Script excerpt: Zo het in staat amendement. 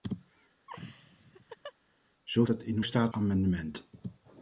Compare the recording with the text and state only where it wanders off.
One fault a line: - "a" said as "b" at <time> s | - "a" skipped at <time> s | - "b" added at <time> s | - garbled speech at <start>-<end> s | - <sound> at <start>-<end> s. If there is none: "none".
- laugh at 0.7-1.7 s